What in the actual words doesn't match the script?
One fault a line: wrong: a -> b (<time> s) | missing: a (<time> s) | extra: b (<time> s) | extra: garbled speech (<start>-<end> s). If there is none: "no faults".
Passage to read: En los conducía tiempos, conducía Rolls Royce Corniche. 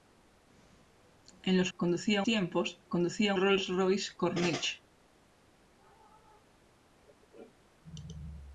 no faults